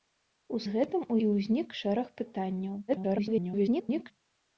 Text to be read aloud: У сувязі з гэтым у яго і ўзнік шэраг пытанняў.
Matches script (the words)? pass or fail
fail